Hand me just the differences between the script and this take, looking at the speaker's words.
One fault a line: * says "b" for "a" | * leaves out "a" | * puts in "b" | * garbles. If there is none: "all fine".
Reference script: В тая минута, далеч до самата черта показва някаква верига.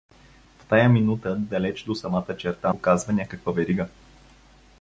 all fine